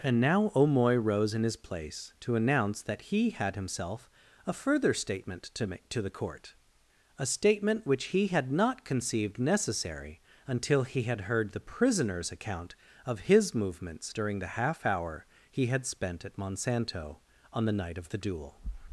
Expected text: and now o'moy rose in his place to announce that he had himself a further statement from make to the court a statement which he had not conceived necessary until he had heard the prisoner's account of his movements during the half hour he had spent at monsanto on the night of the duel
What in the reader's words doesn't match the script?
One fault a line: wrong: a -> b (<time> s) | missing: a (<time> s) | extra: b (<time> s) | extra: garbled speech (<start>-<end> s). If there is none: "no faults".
wrong: from -> to (5.5 s)